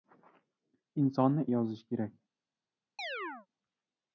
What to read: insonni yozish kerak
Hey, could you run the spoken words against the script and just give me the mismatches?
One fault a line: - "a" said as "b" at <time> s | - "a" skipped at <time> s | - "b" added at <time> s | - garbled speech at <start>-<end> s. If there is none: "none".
none